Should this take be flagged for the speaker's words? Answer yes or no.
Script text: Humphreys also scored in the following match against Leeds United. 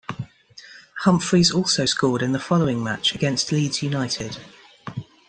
no